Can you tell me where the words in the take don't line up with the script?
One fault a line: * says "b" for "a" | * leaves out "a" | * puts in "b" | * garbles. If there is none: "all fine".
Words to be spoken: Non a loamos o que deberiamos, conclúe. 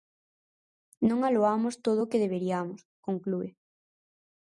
* puts in "todo"